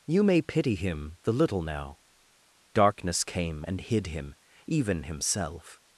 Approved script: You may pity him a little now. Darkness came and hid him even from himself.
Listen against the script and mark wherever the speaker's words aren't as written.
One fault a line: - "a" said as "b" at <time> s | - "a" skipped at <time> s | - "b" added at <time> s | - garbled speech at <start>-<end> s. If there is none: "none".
- "a" said as "the" at 1.2 s
- "from" skipped at 5.0 s